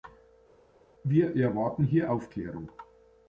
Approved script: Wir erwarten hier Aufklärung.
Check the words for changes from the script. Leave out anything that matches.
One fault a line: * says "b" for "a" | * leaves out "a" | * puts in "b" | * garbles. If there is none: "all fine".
all fine